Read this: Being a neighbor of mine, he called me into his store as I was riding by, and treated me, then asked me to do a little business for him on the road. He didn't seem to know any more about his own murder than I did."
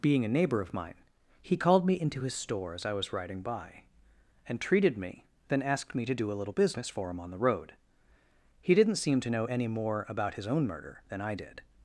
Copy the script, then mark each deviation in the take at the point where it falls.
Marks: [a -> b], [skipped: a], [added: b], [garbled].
Being a neighbor of mine, he called me into his store as I was riding by, and treated me, then asked me to do a little business for him on the road. He didn't seem to know any more about his own murder than I did."